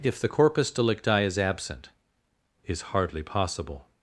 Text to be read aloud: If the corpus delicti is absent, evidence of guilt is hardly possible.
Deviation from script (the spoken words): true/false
true